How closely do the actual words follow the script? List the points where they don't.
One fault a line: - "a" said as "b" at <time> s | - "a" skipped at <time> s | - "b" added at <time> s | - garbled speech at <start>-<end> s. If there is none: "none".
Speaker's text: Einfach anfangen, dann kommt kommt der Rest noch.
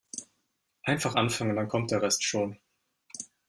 - "kommt" skipped at 1.9 s
- "noch" said as "schon" at 2.2 s